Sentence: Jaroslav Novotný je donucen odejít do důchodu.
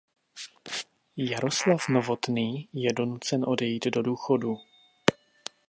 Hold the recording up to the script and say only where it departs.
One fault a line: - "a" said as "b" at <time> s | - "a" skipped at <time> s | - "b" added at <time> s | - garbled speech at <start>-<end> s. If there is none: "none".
none